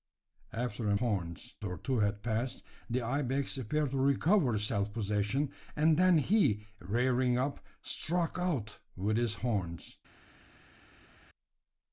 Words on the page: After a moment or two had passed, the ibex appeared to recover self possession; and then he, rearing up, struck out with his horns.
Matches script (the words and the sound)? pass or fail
fail